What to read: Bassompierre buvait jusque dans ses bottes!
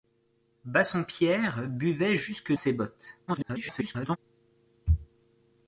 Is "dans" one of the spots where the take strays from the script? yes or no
yes